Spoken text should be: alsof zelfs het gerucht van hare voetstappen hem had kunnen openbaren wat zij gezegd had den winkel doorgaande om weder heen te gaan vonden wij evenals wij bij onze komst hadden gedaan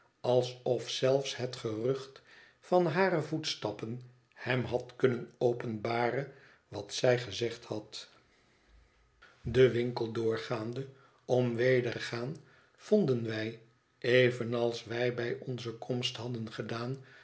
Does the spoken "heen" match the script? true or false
false